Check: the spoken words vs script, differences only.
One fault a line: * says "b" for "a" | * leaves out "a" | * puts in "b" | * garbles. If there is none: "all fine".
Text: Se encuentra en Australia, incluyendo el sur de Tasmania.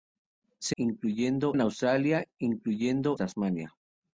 * says "incluyendo" for "encuentra"
* leaves out "el sur de"